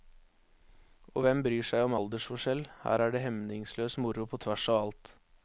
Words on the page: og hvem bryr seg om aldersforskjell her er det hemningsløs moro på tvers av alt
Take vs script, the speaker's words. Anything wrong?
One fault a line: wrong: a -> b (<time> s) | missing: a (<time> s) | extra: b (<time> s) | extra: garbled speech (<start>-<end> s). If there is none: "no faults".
no faults